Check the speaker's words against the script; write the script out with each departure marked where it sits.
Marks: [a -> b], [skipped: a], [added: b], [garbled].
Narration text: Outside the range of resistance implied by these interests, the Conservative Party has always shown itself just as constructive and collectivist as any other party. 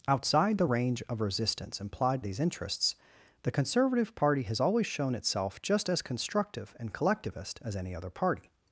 Outside the range of resistance implied [skipped: by] these interests, the Conservative Party has always shown itself just as constructive and collectivist as any other party.